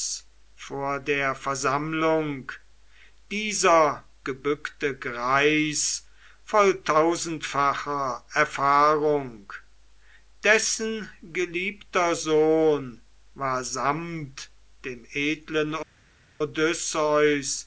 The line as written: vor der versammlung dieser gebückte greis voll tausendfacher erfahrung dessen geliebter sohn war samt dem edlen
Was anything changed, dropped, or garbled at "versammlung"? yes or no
no